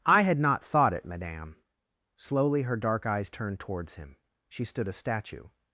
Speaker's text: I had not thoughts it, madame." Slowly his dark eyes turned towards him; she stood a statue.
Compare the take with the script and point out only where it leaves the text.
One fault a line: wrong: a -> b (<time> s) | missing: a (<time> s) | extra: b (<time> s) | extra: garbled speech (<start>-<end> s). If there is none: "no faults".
wrong: thoughts -> thought (0.6 s)
wrong: his -> her (2.6 s)